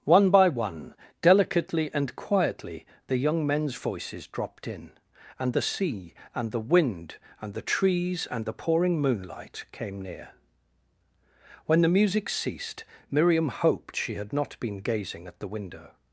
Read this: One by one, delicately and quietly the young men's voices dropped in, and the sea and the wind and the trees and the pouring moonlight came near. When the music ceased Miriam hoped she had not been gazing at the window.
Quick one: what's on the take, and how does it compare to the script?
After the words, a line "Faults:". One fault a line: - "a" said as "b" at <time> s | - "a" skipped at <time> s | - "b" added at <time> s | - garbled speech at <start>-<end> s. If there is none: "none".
One by one, delicately and quietly the young men's voices dropped in, and the sea and the wind and the trees and the pouring moonlight came near. When the music ceased Miriam hoped she had not been gazing at the window.
Faults:
none